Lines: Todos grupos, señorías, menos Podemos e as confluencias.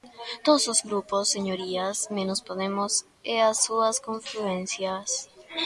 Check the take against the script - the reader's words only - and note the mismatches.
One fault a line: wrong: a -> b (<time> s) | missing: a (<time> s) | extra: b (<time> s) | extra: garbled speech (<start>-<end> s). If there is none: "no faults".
extra: os (0.7 s)
extra: súas (3.6 s)